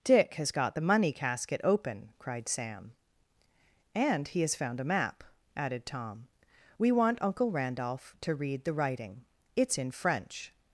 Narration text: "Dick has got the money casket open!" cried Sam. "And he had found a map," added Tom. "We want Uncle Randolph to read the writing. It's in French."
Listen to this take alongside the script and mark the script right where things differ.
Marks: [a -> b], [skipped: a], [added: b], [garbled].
"Dick has got the money casket open!" cried Sam. "And he [had -> has] found a map," added Tom. "We want Uncle Randolph to read the writing. It's in French."